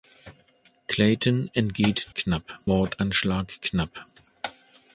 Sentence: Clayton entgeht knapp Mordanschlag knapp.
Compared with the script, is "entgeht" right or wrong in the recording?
right